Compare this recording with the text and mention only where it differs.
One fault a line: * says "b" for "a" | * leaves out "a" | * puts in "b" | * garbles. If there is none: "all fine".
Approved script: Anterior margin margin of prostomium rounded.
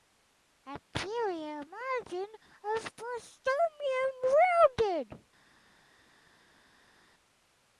* leaves out "margin"